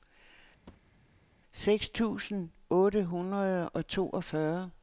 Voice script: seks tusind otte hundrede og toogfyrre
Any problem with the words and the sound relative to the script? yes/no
yes